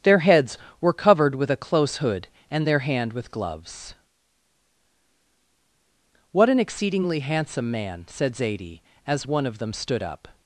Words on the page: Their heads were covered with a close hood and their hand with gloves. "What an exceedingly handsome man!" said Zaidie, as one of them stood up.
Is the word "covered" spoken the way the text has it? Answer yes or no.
yes